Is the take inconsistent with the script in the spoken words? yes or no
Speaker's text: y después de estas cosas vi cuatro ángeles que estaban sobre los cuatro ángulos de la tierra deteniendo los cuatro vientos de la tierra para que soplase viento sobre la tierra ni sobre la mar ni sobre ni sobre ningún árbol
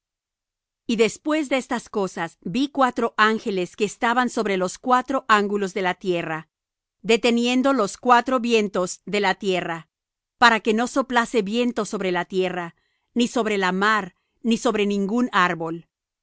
yes